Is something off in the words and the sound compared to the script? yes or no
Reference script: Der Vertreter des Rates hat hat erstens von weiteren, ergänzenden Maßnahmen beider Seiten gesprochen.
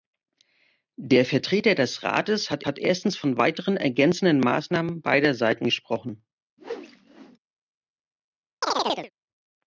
yes